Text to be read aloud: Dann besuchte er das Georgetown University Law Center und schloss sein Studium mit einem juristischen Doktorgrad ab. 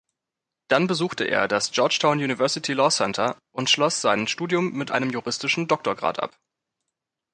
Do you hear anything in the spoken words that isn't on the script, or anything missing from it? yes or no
no